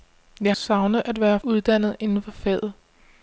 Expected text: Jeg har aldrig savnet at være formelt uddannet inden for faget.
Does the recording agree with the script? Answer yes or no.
no